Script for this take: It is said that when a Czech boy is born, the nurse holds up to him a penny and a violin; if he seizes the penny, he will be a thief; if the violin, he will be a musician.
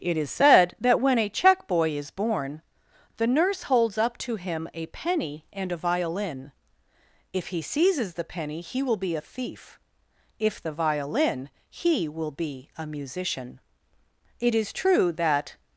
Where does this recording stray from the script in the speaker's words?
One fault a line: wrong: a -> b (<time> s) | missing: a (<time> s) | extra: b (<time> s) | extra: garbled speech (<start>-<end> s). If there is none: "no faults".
extra: It is true that (14.4 s)